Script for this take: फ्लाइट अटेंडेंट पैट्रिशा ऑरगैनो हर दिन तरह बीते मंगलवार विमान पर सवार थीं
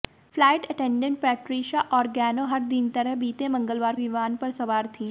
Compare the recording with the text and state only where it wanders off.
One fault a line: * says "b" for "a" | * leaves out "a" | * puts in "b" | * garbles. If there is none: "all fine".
all fine